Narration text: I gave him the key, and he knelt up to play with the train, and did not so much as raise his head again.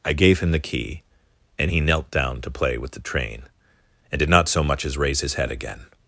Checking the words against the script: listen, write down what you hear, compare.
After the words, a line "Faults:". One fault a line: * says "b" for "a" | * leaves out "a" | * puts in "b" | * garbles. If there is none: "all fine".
I gave him the key, and he knelt down to play with the train, and did not so much as raise his head again.
Faults:
* says "down" for "up"